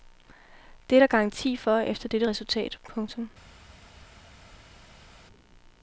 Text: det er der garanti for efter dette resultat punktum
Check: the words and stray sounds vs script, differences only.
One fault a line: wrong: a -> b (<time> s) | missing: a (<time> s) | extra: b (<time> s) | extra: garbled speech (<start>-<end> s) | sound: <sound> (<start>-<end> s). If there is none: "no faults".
no faults